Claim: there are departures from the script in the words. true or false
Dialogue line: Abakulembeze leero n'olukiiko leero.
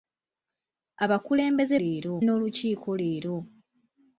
false